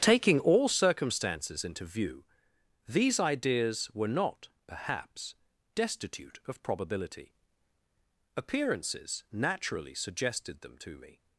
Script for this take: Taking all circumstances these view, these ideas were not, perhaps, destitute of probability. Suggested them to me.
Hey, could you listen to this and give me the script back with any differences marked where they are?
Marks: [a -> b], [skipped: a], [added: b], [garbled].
Taking all circumstances [these -> into] view, these ideas were not, perhaps, destitute of probability. [added: Appearances naturally] Suggested them to me.